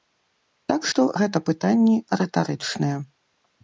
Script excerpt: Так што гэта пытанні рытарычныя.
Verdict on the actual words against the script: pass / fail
pass